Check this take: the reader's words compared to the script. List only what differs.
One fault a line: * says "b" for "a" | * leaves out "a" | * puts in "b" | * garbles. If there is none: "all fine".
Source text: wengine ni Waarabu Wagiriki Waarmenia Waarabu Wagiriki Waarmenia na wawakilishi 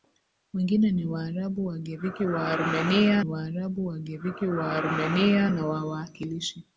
all fine